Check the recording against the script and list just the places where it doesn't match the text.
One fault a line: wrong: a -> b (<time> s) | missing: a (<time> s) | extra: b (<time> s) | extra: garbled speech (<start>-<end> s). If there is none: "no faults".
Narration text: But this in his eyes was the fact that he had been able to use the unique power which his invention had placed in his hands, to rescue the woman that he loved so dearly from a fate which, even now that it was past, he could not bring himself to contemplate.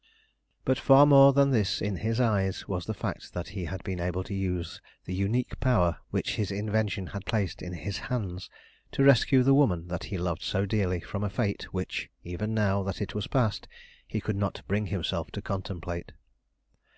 extra: far more than (0.8 s)